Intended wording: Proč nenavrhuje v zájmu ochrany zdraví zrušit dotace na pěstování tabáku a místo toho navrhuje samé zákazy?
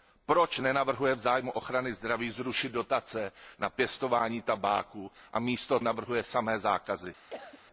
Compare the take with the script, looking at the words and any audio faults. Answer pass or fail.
fail